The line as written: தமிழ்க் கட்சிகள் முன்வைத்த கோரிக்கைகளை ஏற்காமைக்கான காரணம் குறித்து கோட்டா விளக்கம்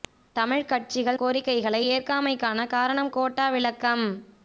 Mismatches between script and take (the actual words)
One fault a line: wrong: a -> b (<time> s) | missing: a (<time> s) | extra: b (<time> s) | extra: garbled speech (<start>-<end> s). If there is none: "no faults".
missing: முன்வைத்த (1.2 s)
missing: குறித்து (3.1 s)